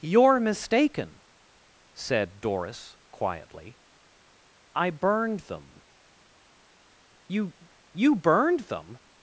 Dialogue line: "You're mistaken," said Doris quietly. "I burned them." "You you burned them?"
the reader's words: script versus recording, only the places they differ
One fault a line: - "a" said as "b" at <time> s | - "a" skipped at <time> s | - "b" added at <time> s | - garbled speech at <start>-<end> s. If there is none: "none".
none